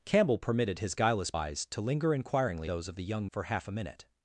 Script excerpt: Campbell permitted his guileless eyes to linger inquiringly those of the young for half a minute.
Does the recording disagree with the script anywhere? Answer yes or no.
no